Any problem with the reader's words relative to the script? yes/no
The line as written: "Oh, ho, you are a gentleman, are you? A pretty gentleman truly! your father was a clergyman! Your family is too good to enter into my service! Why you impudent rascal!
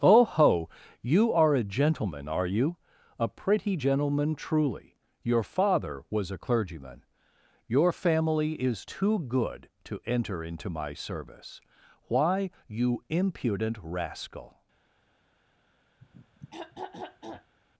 no